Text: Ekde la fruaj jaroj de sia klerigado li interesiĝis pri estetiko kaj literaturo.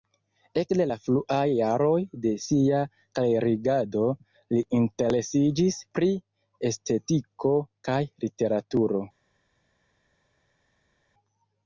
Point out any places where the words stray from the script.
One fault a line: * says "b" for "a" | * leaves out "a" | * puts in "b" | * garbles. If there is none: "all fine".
all fine